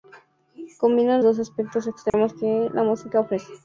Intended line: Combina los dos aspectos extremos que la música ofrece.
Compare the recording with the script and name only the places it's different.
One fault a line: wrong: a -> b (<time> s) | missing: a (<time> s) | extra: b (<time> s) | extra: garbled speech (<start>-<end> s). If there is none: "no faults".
missing: los (1.2 s)